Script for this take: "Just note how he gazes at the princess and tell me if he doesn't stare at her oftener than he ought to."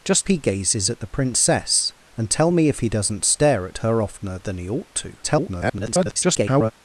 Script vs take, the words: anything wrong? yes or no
yes